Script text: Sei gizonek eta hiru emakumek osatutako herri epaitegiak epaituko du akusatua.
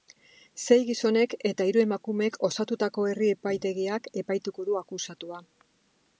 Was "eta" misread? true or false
false